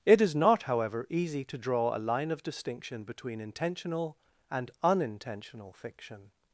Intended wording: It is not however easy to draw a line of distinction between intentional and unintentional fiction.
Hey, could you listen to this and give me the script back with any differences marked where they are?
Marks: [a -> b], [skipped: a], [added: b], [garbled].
It is not however easy to draw a line of distinction between intentional and unintentional fiction.